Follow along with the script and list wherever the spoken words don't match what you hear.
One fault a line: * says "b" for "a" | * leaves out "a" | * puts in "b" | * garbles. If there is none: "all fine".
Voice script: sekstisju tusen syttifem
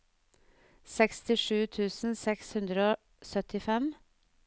* puts in "seks hundre og"